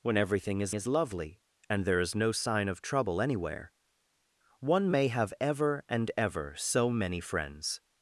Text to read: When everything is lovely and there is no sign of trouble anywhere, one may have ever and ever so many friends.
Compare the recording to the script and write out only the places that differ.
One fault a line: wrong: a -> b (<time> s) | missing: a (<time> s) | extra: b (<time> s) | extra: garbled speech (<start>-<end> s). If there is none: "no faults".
extra: is (0.7 s)